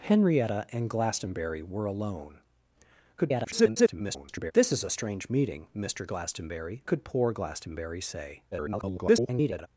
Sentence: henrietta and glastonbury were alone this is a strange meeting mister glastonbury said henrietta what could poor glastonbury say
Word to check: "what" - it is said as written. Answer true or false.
false